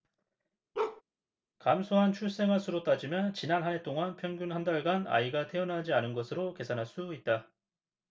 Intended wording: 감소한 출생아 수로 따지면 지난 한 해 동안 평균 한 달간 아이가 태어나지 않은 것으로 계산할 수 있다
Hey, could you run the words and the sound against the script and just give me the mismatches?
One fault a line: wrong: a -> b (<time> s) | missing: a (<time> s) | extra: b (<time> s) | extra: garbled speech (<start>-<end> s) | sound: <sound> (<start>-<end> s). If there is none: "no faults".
sound: bark (0.7-1.0 s)